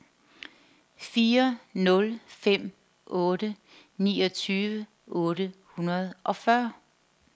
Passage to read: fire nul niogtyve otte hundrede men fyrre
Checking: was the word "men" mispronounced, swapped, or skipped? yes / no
yes